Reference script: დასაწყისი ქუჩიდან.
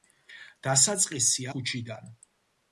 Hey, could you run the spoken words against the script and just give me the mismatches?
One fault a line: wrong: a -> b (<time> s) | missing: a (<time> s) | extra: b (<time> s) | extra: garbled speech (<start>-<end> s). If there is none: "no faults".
no faults